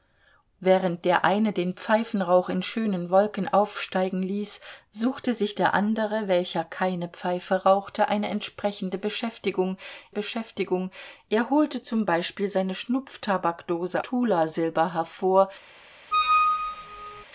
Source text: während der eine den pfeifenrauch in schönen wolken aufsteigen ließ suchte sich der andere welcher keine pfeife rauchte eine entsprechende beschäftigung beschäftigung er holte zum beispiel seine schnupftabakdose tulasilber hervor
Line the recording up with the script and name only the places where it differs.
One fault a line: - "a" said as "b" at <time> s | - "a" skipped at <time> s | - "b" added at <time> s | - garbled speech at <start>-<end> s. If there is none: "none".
none